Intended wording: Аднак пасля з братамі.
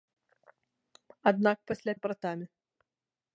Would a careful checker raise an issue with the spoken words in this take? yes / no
no